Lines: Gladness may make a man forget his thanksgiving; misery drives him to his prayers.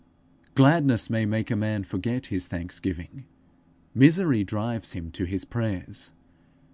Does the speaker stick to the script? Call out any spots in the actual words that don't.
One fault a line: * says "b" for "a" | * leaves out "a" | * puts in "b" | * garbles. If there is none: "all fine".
all fine